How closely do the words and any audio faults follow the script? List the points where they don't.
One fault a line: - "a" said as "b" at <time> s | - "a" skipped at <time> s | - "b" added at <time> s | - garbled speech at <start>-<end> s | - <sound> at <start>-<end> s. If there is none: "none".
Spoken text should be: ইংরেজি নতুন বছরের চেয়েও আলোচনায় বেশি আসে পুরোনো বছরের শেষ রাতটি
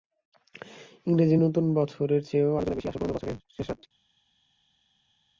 none